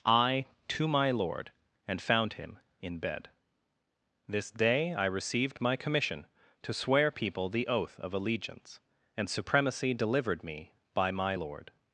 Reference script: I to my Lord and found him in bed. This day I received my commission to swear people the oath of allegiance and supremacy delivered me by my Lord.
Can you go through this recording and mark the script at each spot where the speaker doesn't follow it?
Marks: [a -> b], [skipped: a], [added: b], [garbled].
I to my Lord and found him in bed. This day I received my commission to swear people the oath of allegiance and supremacy delivered me by my Lord.